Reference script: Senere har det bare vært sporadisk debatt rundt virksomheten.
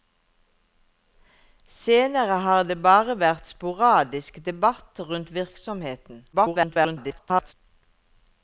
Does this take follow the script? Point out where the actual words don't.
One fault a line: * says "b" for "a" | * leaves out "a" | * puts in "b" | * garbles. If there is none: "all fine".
* garbles